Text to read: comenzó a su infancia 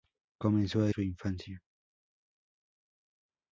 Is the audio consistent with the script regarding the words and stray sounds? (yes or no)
yes